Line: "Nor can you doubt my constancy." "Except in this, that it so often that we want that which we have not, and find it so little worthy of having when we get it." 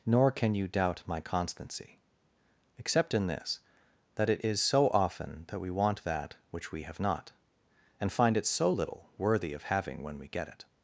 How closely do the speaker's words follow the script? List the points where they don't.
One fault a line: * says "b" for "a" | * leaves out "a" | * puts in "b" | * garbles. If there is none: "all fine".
* puts in "is"